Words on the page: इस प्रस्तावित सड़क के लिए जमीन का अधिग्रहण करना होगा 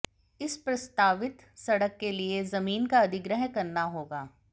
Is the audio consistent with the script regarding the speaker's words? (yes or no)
yes